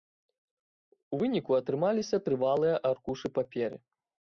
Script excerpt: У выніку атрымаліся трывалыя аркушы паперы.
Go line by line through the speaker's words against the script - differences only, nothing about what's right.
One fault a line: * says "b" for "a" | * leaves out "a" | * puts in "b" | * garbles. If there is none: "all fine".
all fine